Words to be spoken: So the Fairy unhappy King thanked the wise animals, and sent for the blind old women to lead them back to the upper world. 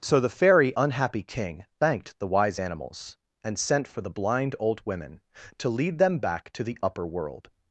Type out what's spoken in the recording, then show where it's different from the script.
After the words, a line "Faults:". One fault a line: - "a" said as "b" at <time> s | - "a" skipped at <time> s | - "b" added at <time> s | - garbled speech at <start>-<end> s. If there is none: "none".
So the Fairy unhappy King thanked the wise animals, and sent for the blind old women to lead them back to the upper world.
Faults:
none